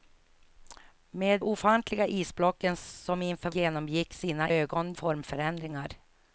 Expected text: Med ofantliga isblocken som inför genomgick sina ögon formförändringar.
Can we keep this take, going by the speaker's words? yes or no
yes